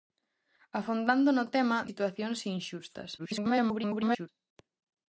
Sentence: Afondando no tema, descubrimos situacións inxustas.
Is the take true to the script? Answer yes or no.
no